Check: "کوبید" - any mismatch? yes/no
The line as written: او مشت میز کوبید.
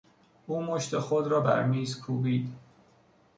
no